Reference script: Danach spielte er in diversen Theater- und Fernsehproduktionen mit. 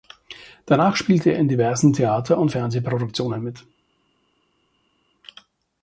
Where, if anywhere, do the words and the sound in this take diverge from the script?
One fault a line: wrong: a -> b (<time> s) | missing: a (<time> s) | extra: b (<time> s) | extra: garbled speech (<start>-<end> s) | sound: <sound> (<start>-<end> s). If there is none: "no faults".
no faults